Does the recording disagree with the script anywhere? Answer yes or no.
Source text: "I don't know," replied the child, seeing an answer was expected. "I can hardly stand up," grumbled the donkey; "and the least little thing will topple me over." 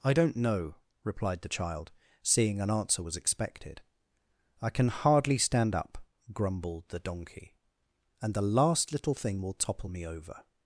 yes